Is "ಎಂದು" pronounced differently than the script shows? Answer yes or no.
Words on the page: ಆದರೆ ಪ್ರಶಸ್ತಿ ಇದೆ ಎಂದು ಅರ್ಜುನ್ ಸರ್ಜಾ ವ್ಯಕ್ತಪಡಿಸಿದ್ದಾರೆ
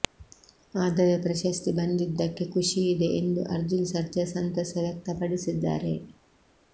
no